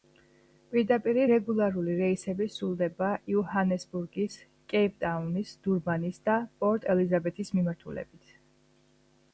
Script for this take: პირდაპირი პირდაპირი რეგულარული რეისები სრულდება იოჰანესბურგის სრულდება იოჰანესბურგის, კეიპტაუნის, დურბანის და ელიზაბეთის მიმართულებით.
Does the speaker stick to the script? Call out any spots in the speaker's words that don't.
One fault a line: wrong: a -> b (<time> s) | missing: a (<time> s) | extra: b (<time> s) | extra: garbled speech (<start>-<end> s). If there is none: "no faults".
missing: პირდაპირი (1.2 s)
missing: სრულდება იოჰანესბურგის (4.4 s)
extra: პორტ (6.6 s)